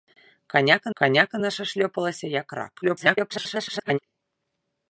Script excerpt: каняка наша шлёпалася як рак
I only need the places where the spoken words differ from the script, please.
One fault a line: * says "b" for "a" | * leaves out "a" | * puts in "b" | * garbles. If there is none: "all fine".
* puts in "каняка"
* garbles